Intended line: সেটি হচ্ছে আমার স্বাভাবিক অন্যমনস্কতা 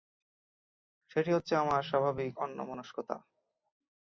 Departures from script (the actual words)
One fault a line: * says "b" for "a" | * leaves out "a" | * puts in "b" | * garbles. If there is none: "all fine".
all fine